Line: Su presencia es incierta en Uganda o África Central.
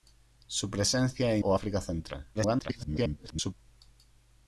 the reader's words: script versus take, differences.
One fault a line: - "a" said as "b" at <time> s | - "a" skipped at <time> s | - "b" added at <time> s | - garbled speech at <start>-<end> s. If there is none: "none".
- "incierta en Uganda" skipped at 1.4 s
- garbled speech at 2.3-3.5 s